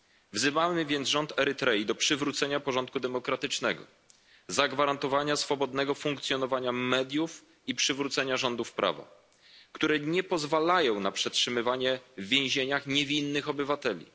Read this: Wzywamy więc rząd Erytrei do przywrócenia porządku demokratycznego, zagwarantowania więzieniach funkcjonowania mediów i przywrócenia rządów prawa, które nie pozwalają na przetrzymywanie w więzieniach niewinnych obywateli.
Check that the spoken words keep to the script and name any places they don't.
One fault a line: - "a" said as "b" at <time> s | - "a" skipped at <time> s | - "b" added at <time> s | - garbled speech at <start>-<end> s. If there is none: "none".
- "więzieniach" said as "swobodnego" at 5.3 s